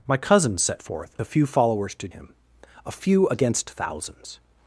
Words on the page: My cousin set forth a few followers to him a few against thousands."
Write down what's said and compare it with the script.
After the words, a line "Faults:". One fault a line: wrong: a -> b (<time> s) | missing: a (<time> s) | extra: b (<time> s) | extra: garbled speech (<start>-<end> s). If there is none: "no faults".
My cousin set forth a few followers to him a few against thousands."
Faults:
no faults